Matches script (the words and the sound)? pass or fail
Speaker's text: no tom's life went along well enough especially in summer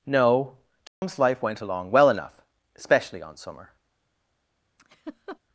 fail